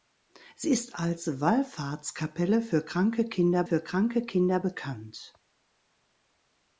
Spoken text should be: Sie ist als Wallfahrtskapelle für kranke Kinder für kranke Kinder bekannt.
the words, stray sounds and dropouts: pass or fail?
pass